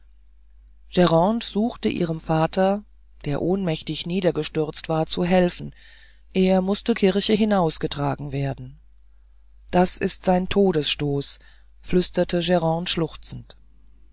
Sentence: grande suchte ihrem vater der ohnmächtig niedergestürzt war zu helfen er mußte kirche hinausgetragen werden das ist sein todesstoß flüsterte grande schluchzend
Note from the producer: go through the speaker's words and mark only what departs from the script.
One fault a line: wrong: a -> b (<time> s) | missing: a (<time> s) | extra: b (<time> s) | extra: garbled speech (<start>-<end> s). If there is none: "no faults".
no faults